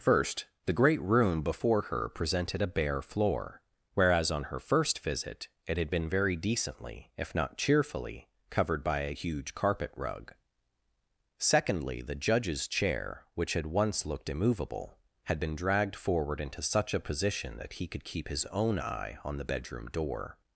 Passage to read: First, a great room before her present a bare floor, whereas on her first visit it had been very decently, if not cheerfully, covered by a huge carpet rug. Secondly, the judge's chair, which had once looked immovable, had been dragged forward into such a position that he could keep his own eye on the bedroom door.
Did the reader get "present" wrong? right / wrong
wrong